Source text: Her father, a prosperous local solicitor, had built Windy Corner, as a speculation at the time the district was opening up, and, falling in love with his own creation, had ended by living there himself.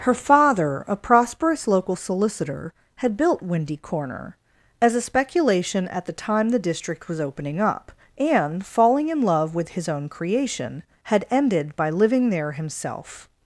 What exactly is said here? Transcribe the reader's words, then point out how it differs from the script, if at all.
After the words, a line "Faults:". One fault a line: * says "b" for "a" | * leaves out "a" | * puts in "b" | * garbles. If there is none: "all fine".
Her father, a prosperous local solicitor, had built Windy Corner, as a speculation at the time the district was opening up, and, falling in love with his own creation, had ended by living there himself.
Faults:
all fine